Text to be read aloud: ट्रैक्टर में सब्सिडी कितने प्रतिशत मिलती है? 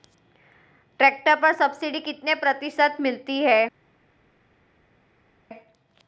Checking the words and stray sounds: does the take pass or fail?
fail